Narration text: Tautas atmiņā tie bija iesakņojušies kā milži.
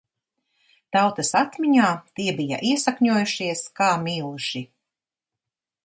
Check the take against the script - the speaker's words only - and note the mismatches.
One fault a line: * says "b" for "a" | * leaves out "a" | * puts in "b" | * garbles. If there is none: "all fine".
all fine